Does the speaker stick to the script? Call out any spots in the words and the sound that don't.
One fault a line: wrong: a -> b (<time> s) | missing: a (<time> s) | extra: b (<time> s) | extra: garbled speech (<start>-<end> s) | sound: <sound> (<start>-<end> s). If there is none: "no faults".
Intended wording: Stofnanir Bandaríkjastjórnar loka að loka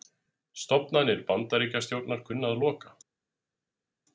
wrong: loka -> kunna (2.3 s)